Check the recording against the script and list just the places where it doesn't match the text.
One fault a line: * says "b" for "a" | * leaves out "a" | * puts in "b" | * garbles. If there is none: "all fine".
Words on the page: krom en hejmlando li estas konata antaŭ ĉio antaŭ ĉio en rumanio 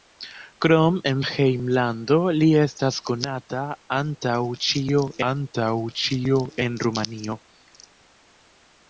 all fine